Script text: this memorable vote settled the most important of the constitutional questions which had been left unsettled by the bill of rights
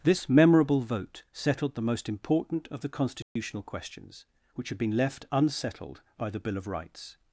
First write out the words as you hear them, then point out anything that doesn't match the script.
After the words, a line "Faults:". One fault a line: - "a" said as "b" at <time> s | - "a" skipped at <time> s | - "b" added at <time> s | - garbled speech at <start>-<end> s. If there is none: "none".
this memorable vote settled the most important of the constitutional questions which had been left unsettled by the bill of rights
Faults:
none